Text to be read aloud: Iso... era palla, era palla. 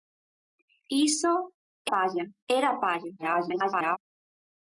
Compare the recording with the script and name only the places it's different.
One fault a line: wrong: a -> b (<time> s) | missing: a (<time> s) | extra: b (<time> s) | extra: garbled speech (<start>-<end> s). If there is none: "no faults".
missing: era (1.3 s)
extra: garbled speech (3.2-4.0 s)